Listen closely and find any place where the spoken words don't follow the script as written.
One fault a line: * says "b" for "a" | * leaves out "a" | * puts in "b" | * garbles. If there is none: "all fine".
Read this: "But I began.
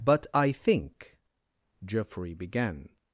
* puts in "think Geoffrey"